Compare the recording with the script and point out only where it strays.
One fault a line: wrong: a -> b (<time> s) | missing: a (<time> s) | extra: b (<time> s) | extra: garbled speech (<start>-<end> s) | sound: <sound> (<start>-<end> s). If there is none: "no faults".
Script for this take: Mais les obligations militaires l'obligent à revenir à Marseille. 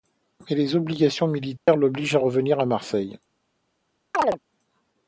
sound: dropout (1.6-1.7 s)
sound: chirp (4.1-4.4 s)